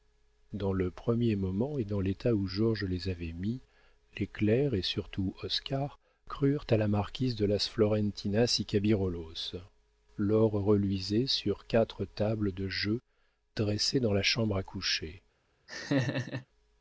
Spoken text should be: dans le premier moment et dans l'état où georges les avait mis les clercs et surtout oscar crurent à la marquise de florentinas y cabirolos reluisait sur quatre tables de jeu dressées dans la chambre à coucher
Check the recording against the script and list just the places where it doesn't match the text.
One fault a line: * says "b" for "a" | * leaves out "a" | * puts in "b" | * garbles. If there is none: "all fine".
* puts in "las"
* puts in "l'or"